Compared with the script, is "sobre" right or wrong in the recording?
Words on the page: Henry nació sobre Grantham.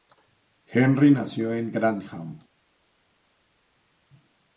wrong